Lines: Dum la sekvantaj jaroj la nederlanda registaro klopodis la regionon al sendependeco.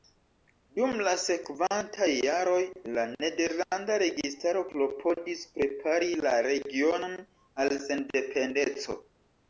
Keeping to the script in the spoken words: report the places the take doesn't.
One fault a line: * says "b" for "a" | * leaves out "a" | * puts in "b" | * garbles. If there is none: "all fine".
* puts in "prepari"